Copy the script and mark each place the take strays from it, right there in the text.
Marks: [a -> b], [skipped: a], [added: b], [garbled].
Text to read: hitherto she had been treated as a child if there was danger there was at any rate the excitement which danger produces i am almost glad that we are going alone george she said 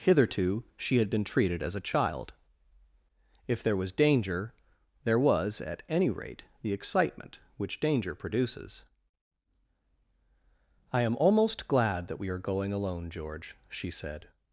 hitherto she had been treated as a child if there was danger there was at any rate the excitement which danger produces i am almost glad that we are going alone george she said